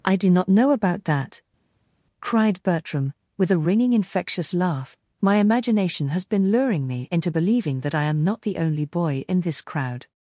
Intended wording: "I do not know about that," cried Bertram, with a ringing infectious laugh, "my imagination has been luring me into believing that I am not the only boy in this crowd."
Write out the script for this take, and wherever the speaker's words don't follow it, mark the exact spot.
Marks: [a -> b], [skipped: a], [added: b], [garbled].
"I do not know about that," cried Bertram, with a ringing infectious laugh, "my imagination has been luring me into believing that I am not the only boy in this crowd."